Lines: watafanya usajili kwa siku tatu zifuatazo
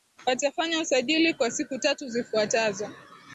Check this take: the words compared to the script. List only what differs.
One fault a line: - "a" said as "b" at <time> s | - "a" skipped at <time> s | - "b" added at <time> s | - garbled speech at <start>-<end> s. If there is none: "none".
none